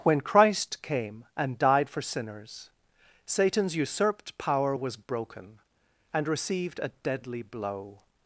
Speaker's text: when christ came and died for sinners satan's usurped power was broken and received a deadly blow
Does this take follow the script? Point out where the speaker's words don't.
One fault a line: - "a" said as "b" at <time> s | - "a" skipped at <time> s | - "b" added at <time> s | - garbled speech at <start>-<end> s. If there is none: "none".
none